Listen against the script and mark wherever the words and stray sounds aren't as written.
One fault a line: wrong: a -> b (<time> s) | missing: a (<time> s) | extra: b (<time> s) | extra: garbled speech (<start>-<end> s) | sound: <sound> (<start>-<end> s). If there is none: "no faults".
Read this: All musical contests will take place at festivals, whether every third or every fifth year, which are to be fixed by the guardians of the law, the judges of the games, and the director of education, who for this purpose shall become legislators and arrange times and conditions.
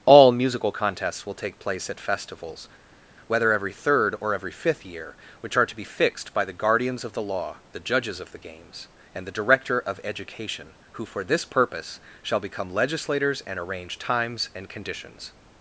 no faults